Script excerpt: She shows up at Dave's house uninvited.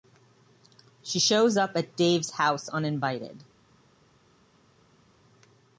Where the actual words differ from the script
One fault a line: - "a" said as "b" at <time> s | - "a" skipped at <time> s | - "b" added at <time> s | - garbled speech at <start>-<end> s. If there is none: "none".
none